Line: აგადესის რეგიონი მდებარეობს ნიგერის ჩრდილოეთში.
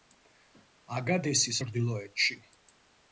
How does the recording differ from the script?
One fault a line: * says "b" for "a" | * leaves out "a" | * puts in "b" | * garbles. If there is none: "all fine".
* leaves out "რეგიონი მდებარეობს ნიგერის"